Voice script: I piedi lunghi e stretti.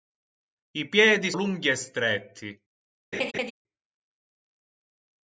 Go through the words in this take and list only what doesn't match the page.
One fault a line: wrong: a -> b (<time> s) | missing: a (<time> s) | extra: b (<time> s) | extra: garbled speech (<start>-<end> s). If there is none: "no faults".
no faults